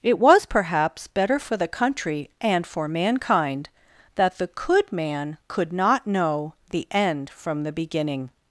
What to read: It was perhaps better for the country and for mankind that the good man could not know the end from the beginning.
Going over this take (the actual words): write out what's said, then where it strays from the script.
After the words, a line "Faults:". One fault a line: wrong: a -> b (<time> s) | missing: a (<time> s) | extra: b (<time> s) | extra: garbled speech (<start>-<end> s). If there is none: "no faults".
It was perhaps better for the country and for mankind that the could man could not know the end from the beginning.
Faults:
wrong: good -> could (4.5 s)